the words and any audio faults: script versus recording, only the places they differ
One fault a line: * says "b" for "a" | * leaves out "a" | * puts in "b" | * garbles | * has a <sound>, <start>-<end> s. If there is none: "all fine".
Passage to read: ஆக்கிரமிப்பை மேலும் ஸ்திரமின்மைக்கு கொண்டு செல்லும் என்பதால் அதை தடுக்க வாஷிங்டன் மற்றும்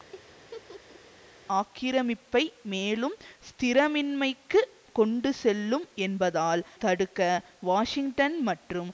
* has a laugh, 0.1-1.0 s
* leaves out "அதை"